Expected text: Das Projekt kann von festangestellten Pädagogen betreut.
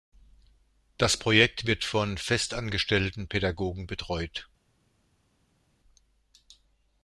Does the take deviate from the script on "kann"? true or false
true